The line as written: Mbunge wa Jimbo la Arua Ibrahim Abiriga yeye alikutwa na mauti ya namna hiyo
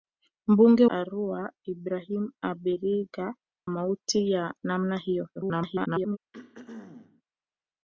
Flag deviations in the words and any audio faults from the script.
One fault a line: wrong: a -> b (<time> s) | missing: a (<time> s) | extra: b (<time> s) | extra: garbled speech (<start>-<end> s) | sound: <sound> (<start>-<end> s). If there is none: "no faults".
missing: wa Jimbo la (0.9 s)
missing: yeye alikutwa na (3.3 s)
extra: garbled speech (5.4-6.2 s)
sound: throat clearing (6.3-7.2 s)